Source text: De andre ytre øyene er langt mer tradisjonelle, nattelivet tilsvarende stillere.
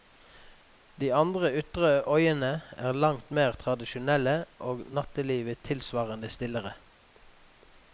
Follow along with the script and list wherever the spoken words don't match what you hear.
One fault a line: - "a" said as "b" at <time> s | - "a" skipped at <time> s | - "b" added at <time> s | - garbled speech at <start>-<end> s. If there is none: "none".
- "og" added at 4.7 s